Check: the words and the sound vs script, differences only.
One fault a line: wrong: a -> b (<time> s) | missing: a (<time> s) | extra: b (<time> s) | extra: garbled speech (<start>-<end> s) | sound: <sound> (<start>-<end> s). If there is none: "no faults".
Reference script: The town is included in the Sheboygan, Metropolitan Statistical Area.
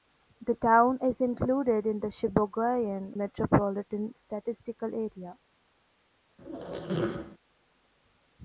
sound: squeak (6.4-7.4 s)